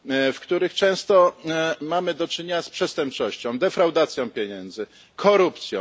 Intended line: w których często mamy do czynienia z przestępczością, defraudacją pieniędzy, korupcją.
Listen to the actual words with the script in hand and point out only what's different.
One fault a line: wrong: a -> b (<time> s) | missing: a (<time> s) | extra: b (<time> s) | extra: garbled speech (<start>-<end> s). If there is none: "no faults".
no faults